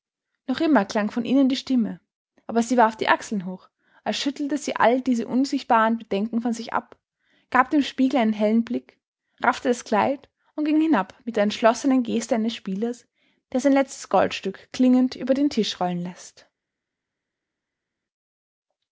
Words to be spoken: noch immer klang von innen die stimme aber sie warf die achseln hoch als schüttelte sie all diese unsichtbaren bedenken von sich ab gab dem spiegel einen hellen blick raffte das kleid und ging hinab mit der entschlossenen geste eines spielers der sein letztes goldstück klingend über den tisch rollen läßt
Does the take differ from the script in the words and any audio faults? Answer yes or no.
no